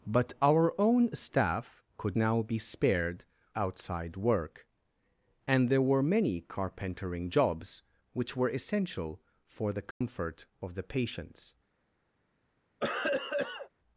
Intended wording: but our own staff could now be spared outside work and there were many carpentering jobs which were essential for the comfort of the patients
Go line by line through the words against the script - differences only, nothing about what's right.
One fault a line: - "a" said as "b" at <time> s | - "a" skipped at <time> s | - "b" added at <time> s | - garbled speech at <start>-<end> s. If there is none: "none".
none